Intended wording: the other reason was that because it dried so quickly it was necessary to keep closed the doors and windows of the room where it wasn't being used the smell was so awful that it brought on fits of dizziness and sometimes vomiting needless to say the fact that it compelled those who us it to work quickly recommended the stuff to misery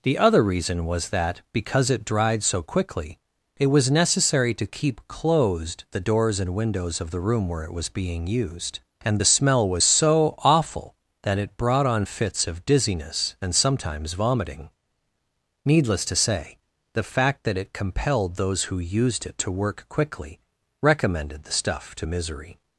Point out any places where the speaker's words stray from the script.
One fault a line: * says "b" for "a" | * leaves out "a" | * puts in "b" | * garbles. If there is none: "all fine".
* says "was" for "wasn't"
* puts in "and"
* says "used" for "us"